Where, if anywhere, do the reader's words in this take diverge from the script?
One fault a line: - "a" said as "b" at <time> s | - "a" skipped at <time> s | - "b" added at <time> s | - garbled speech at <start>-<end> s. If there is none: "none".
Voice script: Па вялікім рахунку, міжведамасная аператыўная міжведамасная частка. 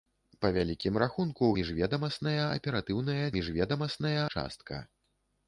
none